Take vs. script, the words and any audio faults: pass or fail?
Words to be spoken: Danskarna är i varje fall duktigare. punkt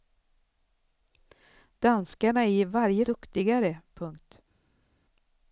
fail